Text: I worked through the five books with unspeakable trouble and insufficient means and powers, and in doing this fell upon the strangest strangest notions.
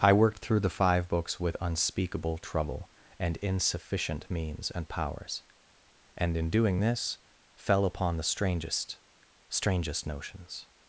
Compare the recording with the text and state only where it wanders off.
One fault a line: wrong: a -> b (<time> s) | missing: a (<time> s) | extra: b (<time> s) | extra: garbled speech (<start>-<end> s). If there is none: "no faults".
no faults